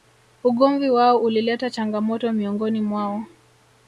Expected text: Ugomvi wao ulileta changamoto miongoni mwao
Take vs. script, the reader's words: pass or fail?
pass